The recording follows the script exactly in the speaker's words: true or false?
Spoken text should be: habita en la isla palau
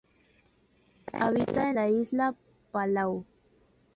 true